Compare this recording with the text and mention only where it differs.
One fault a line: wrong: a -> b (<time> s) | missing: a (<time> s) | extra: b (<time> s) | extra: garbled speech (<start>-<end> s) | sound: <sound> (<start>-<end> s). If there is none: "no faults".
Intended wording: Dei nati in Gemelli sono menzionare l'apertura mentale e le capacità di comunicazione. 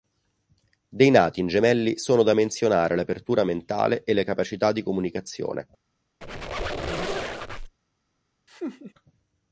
extra: da (2.2 s)
sound: squeak (6.2-7.7 s)
sound: laugh (8.5-8.9 s)